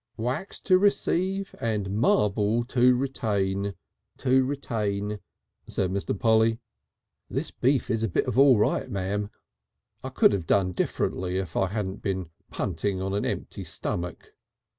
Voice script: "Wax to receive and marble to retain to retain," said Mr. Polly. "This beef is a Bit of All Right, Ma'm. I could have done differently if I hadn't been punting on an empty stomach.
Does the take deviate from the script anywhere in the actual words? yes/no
no